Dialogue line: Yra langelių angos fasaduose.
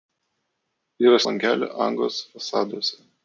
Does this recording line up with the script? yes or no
yes